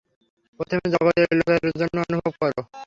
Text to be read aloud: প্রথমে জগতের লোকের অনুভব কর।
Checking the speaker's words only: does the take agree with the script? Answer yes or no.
no